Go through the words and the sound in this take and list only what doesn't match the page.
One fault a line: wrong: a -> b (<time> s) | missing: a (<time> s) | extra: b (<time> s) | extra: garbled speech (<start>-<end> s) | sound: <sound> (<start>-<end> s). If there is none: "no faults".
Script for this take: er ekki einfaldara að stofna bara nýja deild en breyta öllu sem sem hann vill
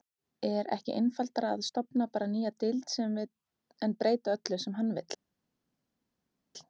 missing: sem (4.8 s)